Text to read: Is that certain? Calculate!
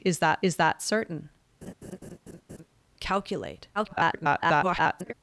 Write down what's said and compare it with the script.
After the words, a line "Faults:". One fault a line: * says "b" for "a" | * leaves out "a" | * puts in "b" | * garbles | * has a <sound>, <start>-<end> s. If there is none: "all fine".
Is that is that certain? Calculate! [garbled]
Faults:
* puts in "is that"
* has a laugh, 1.6-2.7 s
* garbles